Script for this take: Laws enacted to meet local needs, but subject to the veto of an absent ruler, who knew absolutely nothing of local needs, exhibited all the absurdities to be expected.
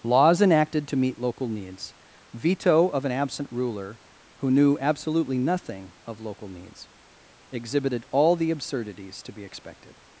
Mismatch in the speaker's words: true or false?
true